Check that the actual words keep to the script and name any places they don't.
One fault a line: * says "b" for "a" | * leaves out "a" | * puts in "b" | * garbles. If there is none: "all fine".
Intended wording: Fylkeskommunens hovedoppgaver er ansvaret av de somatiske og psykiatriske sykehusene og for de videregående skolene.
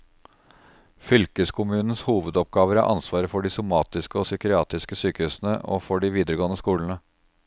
* says "for" for "av"